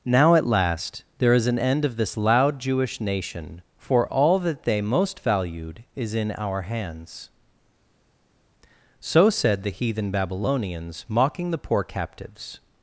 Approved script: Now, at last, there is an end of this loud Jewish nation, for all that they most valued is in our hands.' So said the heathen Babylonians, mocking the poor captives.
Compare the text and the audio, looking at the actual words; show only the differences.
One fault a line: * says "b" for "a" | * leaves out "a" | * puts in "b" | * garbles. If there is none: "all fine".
all fine